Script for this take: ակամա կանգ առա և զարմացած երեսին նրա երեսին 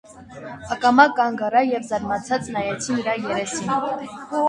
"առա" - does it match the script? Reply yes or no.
yes